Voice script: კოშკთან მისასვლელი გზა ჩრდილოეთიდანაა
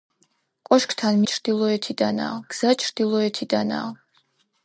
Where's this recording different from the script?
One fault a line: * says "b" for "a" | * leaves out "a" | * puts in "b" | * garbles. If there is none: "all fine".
* says "ჩრდილოეთიდანაა" for "მისასვლელი"